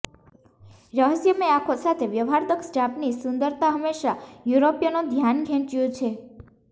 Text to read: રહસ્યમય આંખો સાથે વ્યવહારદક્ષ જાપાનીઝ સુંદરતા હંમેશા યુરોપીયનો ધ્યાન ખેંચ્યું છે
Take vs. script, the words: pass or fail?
pass